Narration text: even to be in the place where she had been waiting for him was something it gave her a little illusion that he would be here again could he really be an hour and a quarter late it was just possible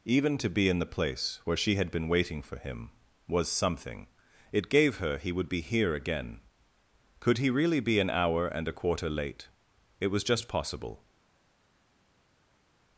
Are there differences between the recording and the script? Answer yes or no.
yes